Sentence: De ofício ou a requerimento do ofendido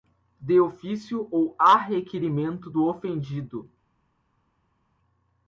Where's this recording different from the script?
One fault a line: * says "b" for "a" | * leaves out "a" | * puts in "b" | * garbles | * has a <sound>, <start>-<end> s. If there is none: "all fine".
all fine